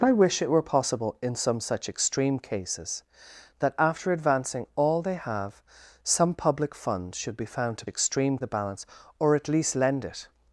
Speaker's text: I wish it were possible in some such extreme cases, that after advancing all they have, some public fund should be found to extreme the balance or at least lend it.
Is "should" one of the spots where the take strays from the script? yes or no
no